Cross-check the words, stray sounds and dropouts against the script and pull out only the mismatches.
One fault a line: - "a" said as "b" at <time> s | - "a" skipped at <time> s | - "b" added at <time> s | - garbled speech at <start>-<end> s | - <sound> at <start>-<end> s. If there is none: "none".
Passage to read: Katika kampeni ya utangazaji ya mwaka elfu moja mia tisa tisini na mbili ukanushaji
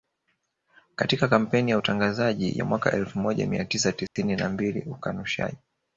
- dropout at 4.1-4.2 s